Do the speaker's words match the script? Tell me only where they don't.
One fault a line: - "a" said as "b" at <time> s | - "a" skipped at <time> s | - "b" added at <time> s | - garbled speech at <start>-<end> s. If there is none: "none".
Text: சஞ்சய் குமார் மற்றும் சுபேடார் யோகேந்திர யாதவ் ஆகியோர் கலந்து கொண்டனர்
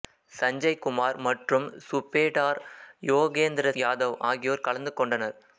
none